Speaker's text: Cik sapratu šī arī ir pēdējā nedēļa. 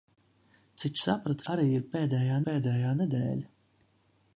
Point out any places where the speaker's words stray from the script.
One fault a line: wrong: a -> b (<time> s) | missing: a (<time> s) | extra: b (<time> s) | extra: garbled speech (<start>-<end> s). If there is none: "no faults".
missing: šī (1.5 s)
extra: pēdējā (2.5 s)